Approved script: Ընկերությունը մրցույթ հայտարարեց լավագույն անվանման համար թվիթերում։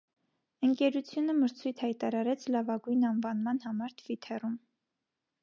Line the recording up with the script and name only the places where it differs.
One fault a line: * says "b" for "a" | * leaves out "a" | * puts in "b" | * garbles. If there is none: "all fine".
all fine